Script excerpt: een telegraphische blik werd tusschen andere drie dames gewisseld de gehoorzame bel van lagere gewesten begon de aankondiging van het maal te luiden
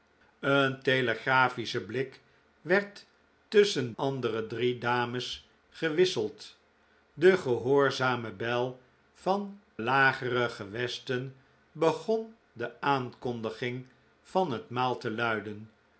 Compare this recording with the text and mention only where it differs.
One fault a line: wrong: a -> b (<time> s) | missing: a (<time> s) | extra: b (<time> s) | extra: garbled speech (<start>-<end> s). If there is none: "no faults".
no faults